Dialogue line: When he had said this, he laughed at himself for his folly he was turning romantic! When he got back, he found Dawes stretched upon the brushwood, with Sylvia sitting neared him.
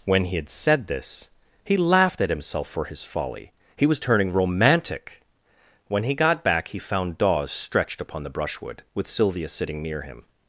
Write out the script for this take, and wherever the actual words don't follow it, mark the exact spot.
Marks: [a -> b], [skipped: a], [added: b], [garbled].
When he had said this, he laughed at himself for his folly he was turning romantic! When he got back, he found Dawes stretched upon the brushwood, with Sylvia sitting [neared -> near] him.